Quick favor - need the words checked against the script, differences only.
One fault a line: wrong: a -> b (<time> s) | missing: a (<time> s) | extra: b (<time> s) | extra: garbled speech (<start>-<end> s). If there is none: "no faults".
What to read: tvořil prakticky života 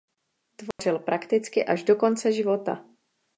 extra: až do konce (1.6 s)